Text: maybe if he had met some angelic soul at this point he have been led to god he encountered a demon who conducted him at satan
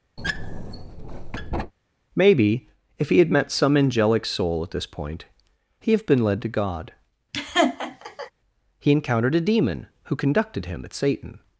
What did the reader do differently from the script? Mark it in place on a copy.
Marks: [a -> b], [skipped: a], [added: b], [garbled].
maybe if he had met some angelic soul at this point he have been led to god he encountered a demon who conducted him at satan